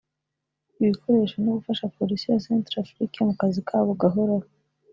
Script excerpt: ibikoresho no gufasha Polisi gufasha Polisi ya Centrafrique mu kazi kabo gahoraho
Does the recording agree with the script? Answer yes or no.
no